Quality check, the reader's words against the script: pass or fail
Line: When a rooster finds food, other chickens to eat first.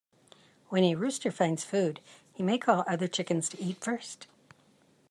fail